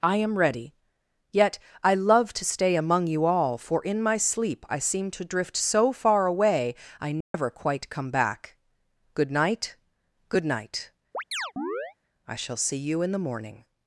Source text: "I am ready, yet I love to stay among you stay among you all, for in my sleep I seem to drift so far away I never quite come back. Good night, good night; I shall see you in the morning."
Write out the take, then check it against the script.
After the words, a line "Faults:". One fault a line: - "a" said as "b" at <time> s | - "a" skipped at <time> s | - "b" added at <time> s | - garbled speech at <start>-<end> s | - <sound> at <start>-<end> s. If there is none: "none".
"I am ready, yet I love to stay among you all, for in my sleep I seem to drift so far away I never quite come back. Good night, good night; I shall see you in the morning."
Faults:
- "stay among you" skipped at 3.2 s
- dropout at 7.2-7.3 s
- chirp at 11.1-11.9 s